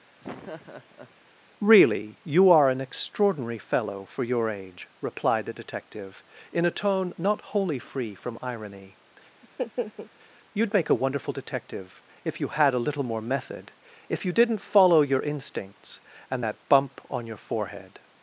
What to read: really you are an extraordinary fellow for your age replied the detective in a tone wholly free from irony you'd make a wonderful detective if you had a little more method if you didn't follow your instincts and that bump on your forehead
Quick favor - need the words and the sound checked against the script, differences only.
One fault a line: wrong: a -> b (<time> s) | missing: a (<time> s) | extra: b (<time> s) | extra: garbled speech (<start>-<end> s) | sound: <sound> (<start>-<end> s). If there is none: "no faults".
sound: laugh (0.2-1.2 s)
extra: not (7.2 s)
sound: laugh (9.4-10.1 s)